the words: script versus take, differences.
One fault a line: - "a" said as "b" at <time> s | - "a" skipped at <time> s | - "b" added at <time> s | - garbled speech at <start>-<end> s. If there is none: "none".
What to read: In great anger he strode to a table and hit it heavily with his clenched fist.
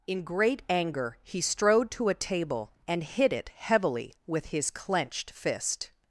none